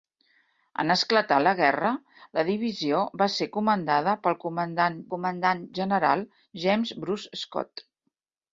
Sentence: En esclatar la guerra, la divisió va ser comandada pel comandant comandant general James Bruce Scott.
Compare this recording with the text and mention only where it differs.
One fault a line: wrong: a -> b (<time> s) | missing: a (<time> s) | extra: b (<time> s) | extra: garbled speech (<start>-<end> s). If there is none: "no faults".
no faults